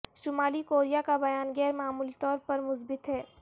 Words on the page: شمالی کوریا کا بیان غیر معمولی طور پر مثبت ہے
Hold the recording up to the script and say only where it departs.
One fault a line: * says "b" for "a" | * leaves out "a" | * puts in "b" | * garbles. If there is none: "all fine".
all fine